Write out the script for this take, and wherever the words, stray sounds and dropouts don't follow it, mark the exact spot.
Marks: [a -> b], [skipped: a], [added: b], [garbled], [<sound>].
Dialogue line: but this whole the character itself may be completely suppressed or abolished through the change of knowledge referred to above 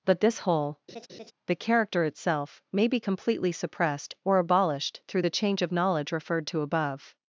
but this whole [laugh] the character itself may be completely suppressed or abolished through the change of knowledge referred to above